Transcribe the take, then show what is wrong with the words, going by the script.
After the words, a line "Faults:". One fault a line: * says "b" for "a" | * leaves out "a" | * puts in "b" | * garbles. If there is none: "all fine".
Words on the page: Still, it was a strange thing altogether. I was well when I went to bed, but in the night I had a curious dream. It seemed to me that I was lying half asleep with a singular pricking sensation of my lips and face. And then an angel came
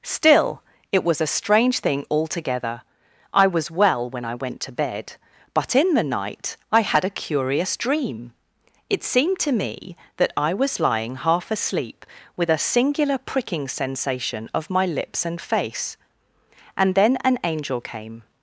Still, it was a strange thing altogether. I was well when I went to bed, but in the night I had a curious dream. It seemed to me that I was lying half asleep with a singular pricking sensation of my lips and face. And then an angel came
Faults:
all fine